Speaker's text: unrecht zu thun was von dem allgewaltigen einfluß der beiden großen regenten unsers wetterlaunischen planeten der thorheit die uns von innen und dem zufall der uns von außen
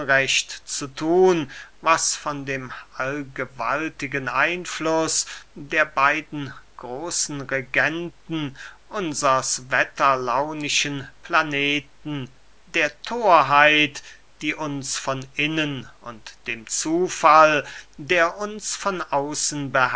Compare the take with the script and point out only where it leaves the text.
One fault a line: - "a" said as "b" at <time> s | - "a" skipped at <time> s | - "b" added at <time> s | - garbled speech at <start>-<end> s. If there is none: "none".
none